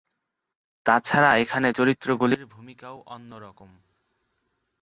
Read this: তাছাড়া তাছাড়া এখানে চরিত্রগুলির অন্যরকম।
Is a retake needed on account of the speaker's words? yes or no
yes